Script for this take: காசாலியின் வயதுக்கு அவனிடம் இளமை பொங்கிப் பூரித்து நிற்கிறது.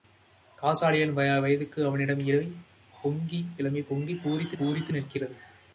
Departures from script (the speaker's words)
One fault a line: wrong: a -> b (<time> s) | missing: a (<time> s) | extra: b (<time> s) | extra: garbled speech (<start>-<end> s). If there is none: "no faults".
extra: பூரித்து (4.6 s)